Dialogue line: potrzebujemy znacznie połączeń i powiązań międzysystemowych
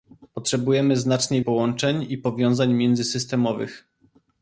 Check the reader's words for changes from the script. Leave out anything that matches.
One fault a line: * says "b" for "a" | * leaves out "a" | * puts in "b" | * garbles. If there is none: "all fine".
all fine